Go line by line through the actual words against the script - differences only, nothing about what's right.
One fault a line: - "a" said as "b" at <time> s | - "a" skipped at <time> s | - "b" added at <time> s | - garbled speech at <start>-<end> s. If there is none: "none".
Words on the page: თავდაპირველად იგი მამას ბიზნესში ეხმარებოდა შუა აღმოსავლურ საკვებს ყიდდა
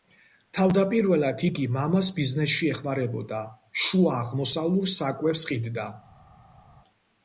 none